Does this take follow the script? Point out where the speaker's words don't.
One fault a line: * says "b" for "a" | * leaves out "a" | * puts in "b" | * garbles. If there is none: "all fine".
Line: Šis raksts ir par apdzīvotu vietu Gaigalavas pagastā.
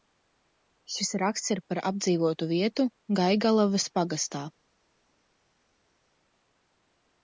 all fine